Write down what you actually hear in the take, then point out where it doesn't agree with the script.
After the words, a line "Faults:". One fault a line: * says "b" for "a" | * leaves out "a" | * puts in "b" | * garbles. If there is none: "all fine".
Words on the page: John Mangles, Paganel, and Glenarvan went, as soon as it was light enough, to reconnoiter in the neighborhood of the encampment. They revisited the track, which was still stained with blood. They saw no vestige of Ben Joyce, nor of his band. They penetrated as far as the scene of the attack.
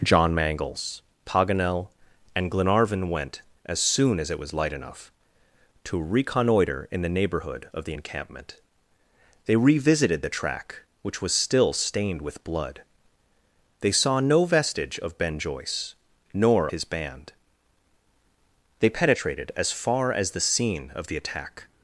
John Mangles, Paganel, and Glenarvan went, as soon as it was light enough, to reconnoiter in the neighborhood of the encampment. They revisited the track, which was still stained with blood. They saw no vestige of Ben Joyce, nor his band. They penetrated as far as the scene of the attack.
Faults:
* leaves out "of"